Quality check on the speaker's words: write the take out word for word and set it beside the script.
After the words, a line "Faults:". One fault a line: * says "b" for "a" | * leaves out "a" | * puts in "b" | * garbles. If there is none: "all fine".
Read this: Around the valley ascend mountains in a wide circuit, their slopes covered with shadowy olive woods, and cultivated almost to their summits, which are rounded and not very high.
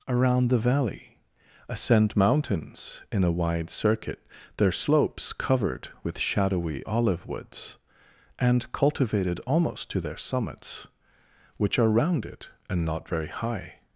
Around the valley ascend mountains in a wide circuit, their slopes covered with shadowy olive woods, and cultivated almost to their summits, which are rounded and not very high.
Faults:
all fine